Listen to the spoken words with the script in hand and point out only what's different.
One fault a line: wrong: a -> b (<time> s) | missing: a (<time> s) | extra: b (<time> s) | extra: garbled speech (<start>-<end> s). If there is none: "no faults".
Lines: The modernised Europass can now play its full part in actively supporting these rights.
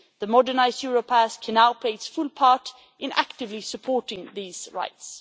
no faults